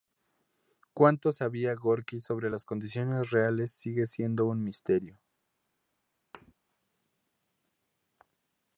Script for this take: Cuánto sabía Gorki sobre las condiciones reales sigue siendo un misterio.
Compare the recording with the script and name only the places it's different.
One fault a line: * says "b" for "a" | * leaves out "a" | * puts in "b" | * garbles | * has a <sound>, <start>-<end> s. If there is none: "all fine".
* has a thud, 6.3-6.5 s